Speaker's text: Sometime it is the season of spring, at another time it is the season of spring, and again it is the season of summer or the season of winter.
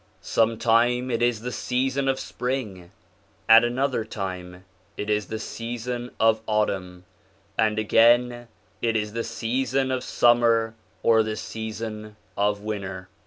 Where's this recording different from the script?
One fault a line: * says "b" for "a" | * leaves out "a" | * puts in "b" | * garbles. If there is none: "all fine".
* says "autumn" for "spring"